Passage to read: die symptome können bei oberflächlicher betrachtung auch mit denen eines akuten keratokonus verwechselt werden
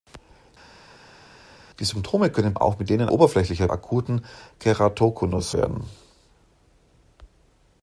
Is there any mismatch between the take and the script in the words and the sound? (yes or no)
yes